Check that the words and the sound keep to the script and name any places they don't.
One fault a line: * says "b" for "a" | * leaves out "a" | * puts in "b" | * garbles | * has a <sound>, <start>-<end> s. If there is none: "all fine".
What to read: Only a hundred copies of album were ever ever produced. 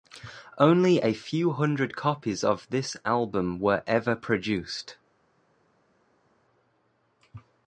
* puts in "few"
* puts in "this"
* leaves out "ever"